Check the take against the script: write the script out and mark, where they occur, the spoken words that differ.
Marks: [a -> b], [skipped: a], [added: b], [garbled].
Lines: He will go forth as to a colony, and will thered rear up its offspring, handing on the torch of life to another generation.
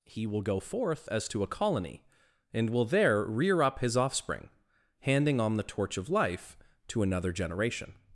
He will go forth as to a colony, and will [thered -> there] rear up [its -> his] offspring, handing on the torch of life to another generation.